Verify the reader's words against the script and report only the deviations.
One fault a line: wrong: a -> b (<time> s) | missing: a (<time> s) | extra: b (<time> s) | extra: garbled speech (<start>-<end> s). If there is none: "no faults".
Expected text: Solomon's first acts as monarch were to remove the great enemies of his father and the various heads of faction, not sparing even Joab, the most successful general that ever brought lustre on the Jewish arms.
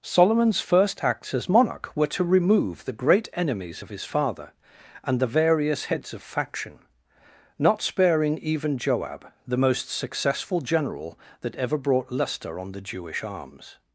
no faults